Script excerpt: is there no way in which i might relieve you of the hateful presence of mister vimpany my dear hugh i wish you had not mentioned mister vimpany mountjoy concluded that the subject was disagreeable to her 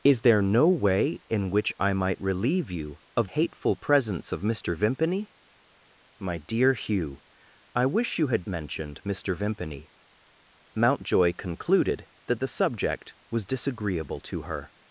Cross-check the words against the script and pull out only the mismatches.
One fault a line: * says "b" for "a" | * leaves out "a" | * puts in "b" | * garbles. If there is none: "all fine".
* leaves out "the"
* leaves out "not"